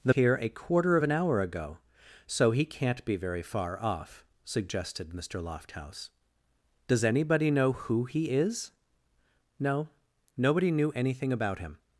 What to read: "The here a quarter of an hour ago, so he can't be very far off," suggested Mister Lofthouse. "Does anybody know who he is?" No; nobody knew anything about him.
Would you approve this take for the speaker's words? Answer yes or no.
yes